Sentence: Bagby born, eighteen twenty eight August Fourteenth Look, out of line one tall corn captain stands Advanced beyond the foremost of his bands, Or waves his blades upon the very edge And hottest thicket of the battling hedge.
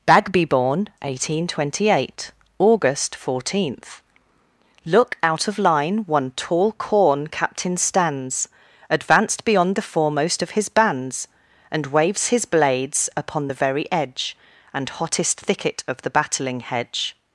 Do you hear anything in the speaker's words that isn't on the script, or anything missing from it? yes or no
yes